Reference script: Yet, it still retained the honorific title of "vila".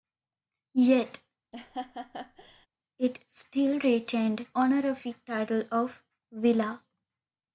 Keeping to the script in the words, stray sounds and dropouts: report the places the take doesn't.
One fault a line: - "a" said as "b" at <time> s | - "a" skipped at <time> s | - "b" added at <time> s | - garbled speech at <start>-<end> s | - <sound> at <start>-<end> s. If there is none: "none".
- laugh at 1.5-2.7 s
- "the" skipped at 4.5 s